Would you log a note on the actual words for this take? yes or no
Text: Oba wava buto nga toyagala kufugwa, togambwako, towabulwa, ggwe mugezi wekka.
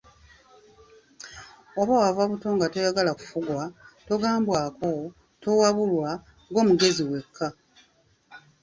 no